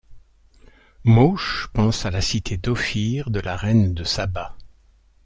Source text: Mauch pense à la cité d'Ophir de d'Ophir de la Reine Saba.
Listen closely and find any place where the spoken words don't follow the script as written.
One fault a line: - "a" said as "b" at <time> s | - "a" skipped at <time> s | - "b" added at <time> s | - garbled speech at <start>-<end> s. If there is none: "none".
- "d'Ophir de" skipped at 3.4 s
- "de" added at 3.9 s